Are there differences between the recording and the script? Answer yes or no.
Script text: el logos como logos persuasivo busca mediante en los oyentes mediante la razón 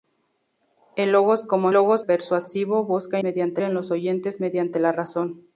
no